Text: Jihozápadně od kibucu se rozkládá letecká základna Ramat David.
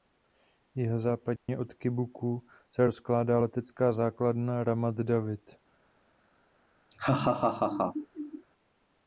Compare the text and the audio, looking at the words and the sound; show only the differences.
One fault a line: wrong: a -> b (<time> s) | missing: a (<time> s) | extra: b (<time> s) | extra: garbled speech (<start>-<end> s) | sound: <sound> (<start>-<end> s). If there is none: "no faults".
sound: dropout (1.4-1.5 s)
sound: laugh (6.9-8.5 s)